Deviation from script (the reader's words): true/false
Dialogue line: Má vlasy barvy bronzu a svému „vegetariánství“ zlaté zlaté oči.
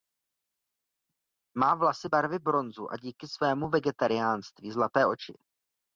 true